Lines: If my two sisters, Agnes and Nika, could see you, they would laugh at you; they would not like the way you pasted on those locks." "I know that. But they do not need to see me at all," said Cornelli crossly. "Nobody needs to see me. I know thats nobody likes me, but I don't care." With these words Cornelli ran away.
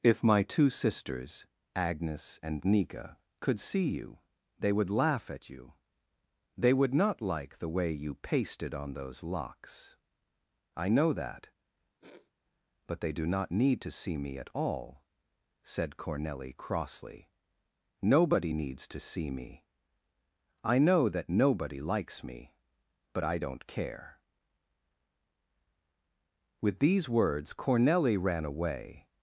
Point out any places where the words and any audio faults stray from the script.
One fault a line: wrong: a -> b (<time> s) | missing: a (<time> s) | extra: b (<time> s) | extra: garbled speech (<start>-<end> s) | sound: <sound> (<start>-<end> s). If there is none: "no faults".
sound: sniff (12.0-12.3 s)
wrong: thats -> that (21.1 s)